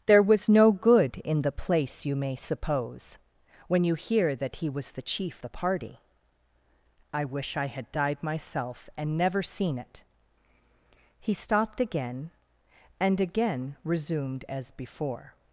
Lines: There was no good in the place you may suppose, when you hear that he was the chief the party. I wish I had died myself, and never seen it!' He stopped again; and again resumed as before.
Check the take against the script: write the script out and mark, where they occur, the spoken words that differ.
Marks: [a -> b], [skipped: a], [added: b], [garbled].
There was no good in the place you may suppose, when you hear that he was the chief the party. I wish I had died myself, and never seen it!' He stopped again; and again resumed as before.